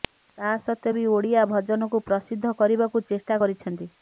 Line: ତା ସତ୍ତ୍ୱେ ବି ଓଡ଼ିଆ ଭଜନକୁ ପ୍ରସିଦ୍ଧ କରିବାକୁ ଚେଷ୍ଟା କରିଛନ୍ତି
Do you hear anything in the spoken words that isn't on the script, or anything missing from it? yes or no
no